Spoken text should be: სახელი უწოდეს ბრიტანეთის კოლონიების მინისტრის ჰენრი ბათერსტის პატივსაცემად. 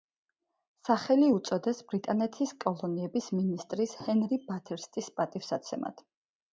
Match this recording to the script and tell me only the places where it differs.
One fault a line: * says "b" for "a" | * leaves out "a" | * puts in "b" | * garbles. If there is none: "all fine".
all fine